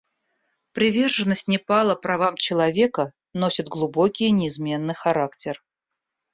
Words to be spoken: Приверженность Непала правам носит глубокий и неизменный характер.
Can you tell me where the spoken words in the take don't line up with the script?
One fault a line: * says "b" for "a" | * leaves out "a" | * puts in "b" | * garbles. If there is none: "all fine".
* puts in "человека"